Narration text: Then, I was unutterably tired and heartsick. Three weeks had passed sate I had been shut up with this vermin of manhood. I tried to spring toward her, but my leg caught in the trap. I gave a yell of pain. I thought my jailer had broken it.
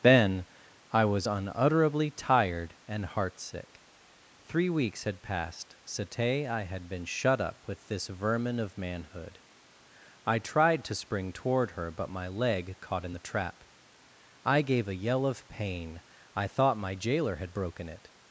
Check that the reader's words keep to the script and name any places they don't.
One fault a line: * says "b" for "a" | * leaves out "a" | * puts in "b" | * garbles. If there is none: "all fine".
all fine